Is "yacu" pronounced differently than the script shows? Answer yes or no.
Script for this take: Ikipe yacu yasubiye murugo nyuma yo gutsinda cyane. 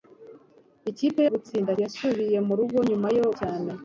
yes